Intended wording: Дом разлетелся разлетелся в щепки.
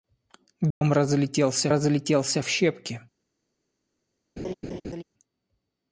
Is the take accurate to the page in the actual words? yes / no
yes